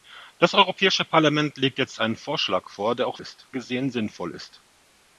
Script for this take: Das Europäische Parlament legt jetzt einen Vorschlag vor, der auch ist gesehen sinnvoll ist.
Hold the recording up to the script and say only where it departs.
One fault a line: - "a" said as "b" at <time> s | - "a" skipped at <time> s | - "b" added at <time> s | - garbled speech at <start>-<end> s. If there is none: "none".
none